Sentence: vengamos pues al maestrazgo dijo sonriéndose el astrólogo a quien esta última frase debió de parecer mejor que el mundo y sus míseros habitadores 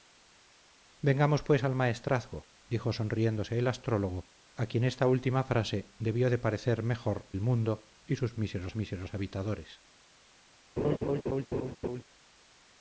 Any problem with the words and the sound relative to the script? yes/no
yes